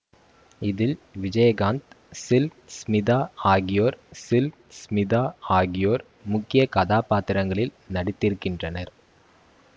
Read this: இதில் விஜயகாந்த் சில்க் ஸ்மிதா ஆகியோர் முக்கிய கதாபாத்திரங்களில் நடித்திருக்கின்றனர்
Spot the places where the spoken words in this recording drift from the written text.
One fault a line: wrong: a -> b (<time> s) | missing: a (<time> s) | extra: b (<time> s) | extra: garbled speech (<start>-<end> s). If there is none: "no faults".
extra: சில்க் ஸ்மிதா ஆகியோர் (4.2 s)